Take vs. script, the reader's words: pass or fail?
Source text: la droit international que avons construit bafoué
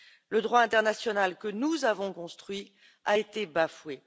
fail